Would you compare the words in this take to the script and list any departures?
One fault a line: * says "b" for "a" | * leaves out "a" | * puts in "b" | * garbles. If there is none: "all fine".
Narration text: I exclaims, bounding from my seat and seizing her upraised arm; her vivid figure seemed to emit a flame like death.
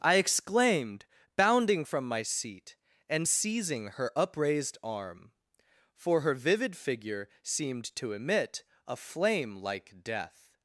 * says "exclaimed" for "exclaims"
* puts in "for"